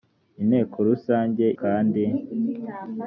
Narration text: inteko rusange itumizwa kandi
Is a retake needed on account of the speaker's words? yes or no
yes